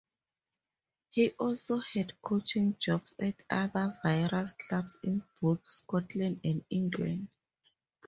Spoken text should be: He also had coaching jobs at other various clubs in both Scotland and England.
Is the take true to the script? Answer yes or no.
yes